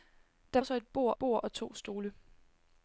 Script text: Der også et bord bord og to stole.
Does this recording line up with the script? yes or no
yes